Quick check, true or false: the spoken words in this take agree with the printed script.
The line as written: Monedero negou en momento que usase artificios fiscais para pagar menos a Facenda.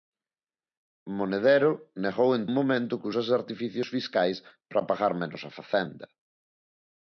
true